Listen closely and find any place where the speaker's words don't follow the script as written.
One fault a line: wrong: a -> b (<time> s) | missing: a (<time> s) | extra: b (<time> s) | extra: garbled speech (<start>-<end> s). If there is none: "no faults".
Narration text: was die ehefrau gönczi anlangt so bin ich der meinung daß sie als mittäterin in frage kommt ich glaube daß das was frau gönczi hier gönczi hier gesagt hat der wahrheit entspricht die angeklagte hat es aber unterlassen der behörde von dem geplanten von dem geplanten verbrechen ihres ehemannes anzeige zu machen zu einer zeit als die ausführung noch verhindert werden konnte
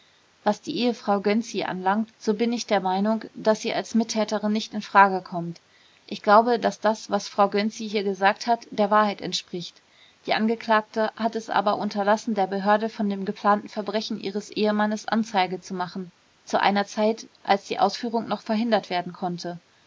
extra: nicht (4.5 s)
missing: gönczi hier (8.0 s)
missing: von dem geplanten (13.7 s)